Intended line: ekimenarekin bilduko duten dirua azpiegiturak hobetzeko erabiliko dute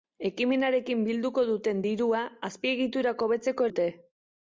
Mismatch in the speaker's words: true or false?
true